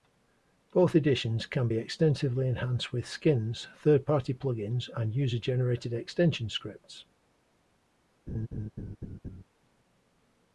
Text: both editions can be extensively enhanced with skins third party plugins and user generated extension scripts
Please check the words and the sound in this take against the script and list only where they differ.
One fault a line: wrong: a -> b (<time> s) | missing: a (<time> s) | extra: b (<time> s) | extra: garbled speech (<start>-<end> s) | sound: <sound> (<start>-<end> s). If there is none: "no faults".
sound: laugh (8.3-9.4 s)